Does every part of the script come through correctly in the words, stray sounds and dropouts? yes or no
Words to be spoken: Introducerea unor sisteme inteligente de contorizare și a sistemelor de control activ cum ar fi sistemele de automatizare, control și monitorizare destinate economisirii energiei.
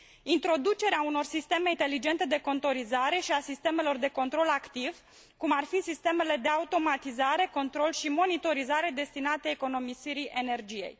yes